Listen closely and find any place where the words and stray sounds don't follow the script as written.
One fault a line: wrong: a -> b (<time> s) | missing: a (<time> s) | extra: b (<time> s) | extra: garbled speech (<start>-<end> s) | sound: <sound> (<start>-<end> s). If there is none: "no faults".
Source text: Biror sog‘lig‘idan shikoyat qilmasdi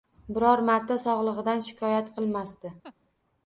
extra: marta (0.7 s)
sound: laugh (2.8-3.0 s)